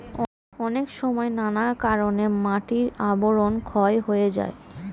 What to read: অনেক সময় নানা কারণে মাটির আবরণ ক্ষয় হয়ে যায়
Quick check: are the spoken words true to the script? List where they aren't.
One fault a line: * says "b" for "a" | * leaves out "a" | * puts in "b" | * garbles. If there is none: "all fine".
all fine